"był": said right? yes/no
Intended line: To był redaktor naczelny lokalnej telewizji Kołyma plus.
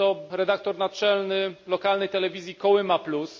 no